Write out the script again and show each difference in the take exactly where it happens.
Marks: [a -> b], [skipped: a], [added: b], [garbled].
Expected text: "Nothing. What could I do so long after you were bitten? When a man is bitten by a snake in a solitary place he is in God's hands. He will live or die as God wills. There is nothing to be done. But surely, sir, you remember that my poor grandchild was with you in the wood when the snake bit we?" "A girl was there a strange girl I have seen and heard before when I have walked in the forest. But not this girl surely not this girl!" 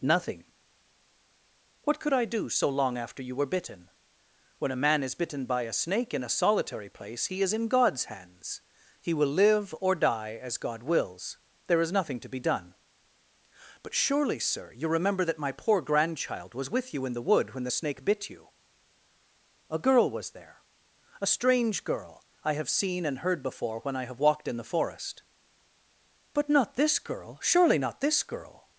"Nothing. What could I do so long after you were bitten? When a man is bitten by a snake in a solitary place he is in God's hands. He will live or die as God wills. There is nothing to be done. But surely, sir, you remember that my poor grandchild was with you in the wood when the snake bit [we?" -> you] "A girl was there a strange girl I have seen and heard before when I have walked in the forest. But not this girl surely not this girl!"